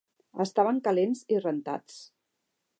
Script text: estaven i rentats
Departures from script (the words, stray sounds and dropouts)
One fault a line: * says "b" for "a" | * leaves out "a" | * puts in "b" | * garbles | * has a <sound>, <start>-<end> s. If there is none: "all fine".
* puts in "calents"